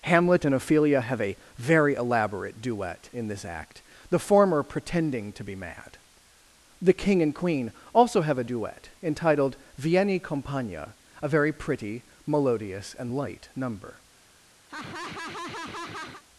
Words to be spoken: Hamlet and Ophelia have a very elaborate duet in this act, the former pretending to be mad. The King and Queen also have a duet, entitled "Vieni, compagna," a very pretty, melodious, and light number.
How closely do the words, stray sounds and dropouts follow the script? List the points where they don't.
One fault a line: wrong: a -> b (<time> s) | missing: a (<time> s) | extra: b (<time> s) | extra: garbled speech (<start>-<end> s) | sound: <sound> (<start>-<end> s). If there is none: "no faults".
sound: laugh (14.7-16.2 s)